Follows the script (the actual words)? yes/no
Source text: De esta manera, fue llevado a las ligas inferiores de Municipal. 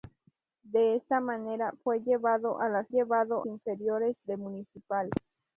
no